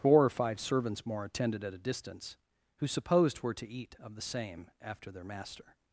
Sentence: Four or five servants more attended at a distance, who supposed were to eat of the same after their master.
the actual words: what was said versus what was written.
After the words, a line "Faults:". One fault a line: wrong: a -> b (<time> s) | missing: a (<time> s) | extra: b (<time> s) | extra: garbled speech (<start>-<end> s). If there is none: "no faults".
Four or five servants more attended at a distance, who supposed were to eat of the same after their master.
Faults:
no faults